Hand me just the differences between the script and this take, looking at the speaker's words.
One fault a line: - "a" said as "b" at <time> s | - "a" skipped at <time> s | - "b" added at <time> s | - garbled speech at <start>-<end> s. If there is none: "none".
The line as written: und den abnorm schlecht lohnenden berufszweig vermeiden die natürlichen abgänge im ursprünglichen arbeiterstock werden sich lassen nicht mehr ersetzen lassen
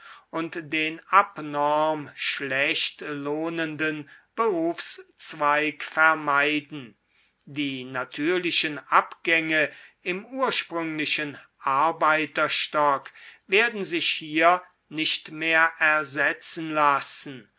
- "lassen" said as "hier" at 14.1 s